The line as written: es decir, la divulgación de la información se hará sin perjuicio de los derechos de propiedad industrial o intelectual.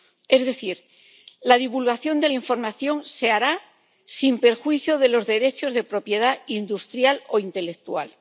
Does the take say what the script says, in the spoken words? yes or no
yes